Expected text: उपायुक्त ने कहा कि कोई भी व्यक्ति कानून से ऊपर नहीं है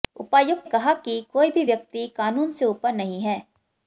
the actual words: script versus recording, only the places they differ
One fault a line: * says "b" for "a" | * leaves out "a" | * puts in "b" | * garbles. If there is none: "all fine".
* leaves out "ने"